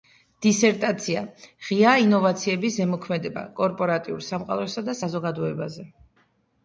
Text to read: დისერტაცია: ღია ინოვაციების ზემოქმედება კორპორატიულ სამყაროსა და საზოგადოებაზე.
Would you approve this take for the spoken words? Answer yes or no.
yes